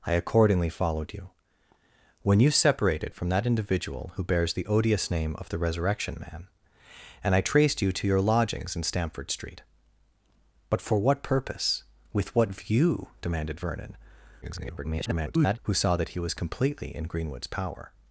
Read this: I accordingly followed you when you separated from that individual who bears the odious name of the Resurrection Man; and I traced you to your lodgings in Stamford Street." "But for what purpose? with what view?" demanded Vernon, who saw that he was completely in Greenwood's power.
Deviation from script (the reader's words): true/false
true